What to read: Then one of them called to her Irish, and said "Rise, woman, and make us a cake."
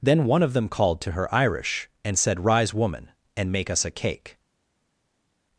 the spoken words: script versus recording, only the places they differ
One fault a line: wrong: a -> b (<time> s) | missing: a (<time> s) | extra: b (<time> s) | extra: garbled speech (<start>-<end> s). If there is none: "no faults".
no faults